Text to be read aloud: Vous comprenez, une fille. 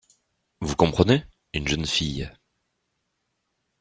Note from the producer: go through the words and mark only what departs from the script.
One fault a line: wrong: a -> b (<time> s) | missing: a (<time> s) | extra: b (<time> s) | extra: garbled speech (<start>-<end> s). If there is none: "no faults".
extra: jeune (1.7 s)